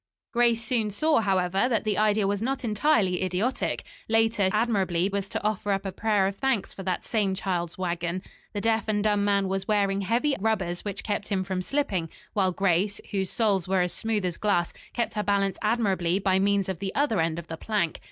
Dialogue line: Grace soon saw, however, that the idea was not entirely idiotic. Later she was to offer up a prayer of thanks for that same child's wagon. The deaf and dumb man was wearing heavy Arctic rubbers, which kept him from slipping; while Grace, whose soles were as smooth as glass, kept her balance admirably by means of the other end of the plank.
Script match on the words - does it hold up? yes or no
no